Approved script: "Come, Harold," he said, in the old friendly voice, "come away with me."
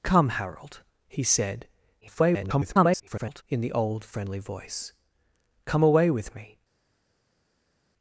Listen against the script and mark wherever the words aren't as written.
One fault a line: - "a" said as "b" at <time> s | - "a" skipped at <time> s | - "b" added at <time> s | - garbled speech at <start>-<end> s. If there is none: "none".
- garbled speech at 2.0-3.4 s